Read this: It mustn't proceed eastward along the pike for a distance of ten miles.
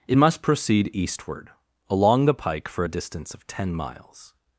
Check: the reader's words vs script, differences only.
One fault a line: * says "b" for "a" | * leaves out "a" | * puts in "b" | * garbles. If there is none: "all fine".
* says "must" for "mustn't"